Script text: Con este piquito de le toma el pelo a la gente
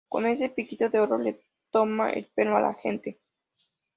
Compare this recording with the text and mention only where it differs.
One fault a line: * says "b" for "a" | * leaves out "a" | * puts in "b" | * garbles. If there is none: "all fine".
* says "ese" for "este"
* puts in "oro"